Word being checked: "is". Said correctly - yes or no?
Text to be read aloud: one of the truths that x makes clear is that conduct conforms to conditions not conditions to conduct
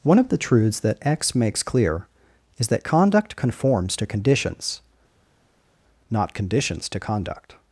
yes